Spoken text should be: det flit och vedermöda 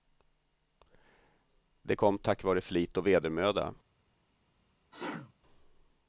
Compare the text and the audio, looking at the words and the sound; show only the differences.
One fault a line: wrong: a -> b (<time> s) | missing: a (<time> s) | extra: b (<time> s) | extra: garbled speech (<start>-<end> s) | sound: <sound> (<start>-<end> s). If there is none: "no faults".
extra: kom tack vare (1.9 s)
sound: sneeze (4.9-5.3 s)